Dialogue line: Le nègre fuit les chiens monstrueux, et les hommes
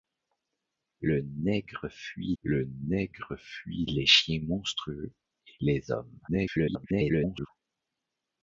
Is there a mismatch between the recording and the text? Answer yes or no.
yes